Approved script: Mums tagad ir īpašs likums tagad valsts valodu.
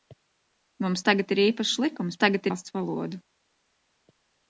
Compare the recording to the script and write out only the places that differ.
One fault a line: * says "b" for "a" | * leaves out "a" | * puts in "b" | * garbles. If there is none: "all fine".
all fine